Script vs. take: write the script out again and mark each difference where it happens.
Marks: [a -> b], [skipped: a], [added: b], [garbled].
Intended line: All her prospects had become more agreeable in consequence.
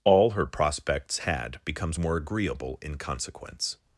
All her prospects had [become -> becomes] more agreeable in consequence.